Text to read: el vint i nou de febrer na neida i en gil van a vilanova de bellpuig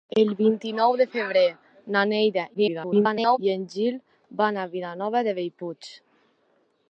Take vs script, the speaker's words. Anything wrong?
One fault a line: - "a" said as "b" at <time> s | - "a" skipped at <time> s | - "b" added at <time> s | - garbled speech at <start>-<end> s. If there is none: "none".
- garbled speech at 2.5-3.4 s